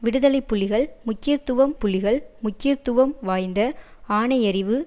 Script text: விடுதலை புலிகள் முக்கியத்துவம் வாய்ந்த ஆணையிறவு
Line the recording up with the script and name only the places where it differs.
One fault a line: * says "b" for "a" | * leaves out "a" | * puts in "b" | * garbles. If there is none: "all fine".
* puts in "புலிகள் முக்கியத்துவம்"